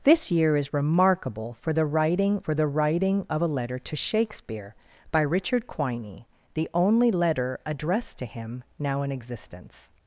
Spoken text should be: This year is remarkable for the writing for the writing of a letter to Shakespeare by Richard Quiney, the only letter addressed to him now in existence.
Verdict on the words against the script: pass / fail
pass